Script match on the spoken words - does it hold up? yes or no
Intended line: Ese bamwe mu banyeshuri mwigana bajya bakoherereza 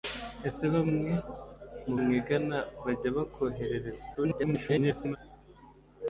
no